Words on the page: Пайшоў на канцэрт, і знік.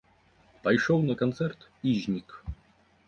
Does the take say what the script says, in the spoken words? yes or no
yes